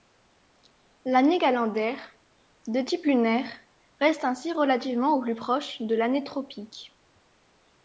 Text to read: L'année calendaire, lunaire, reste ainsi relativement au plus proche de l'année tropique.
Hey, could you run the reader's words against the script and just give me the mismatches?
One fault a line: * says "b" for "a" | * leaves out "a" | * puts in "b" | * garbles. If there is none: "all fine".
* puts in "de type"